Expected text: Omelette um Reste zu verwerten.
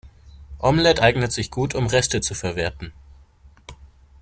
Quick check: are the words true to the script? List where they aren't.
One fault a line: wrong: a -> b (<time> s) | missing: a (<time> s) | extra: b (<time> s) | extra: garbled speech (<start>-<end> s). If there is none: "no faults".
extra: eignet sich gut (1.0 s)